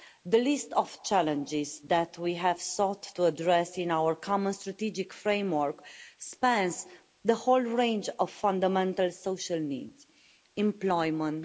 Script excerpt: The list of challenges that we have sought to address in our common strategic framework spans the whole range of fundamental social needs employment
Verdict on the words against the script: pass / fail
pass